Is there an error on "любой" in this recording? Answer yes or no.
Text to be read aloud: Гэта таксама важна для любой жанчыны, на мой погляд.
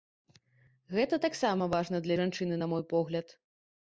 yes